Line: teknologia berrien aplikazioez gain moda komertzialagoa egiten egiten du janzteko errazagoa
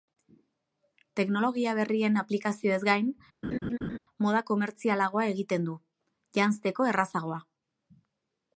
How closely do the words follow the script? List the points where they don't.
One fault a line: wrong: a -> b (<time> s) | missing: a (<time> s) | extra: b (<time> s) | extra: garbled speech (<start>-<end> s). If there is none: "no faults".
missing: egiten (5.7 s)